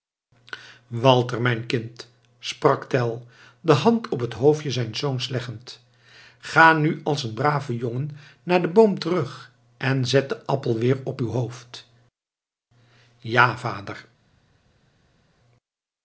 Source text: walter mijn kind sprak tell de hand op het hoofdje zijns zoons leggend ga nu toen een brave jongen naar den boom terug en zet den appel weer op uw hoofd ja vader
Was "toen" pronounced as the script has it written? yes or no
no